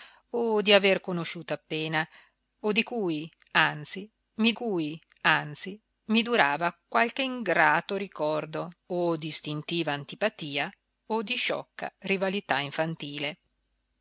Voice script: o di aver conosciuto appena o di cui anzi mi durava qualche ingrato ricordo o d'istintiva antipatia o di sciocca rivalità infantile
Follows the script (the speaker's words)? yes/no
no